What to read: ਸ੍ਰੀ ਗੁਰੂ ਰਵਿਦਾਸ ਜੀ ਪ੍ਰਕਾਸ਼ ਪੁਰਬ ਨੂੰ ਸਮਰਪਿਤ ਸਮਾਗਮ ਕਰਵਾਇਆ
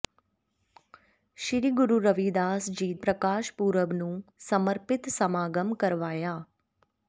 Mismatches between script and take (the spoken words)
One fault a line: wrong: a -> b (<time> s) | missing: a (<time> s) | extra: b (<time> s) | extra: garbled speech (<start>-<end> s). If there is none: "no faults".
no faults